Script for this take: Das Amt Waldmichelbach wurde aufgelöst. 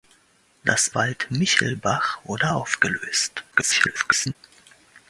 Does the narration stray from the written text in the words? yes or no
yes